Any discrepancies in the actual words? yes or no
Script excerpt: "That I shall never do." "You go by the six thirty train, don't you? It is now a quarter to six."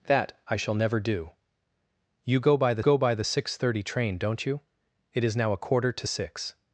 yes